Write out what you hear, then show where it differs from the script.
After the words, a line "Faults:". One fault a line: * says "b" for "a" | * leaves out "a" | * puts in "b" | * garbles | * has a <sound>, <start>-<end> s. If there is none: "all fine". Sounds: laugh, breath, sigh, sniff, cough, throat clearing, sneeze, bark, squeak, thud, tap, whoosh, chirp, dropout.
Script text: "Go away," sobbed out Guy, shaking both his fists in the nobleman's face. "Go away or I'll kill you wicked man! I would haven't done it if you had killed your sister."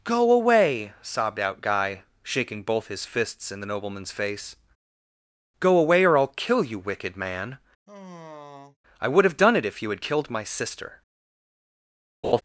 "Go away," sobbed out Guy, shaking both his fists in the nobleman's face. "Go away or I'll kill you wicked man! I would have done it if you had killed my sister."
Faults:
* has a sigh, 7.9-8.8 s
* says "have" for "haven't"
* says "my" for "your"
* has a laugh, 12.2-12.4 s